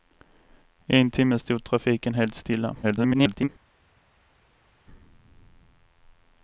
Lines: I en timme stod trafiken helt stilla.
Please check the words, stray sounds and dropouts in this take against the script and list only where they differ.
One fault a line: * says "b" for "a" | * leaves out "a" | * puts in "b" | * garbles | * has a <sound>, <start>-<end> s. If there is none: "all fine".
* garbles